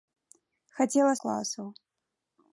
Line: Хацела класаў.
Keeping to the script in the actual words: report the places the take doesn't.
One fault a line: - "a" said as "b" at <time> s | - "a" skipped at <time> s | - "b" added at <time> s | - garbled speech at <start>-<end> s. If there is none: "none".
none